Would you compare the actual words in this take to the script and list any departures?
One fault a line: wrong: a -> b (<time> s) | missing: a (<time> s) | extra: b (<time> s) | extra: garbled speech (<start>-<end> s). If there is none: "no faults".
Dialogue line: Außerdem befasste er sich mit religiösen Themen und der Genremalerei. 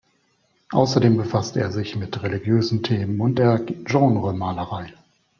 no faults